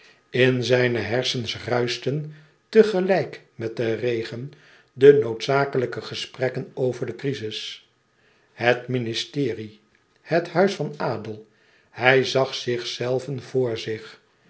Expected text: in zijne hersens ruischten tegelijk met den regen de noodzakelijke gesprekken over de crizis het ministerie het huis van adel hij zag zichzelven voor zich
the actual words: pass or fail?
pass